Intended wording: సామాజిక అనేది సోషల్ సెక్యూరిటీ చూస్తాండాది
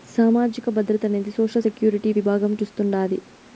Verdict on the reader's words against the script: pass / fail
fail